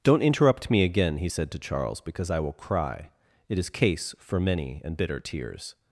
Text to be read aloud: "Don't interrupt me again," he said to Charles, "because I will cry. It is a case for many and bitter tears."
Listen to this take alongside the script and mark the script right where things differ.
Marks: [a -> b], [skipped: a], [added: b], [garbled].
"Don't interrupt me again," he said to Charles, "because I will cry. It is [skipped: a] case for many and bitter tears."